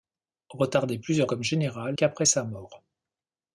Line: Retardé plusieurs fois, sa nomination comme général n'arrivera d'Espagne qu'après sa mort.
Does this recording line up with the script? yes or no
no